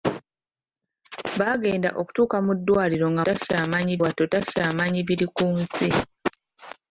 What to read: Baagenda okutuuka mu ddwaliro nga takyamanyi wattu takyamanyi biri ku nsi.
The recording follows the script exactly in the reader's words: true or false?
true